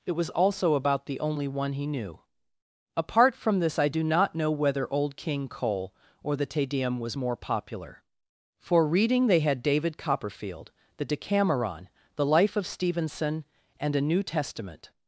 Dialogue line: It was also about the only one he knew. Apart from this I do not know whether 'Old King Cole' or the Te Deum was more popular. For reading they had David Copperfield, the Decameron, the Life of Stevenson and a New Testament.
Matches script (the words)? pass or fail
pass